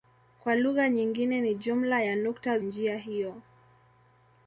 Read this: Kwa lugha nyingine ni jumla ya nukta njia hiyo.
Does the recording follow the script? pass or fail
pass